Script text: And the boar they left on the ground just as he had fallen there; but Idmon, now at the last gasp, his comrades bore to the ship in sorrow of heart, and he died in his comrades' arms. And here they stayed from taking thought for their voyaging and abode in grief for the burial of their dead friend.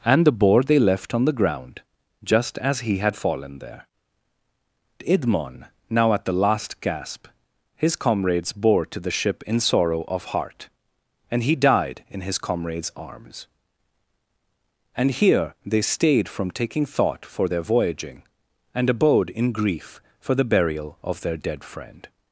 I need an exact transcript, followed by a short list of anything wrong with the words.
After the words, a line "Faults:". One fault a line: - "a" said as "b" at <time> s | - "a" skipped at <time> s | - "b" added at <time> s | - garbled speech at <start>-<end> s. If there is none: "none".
And the boar they left on the ground just as he had fallen there; Idmon, now at the last gasp, his comrades bore to the ship in sorrow of heart, and he died in his comrades' arms. And here they stayed from taking thought for their voyaging and abode in grief for the burial of their dead friend.
Faults:
- "but" skipped at 3.9 s